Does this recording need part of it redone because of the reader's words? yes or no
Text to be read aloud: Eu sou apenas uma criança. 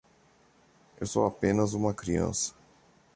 no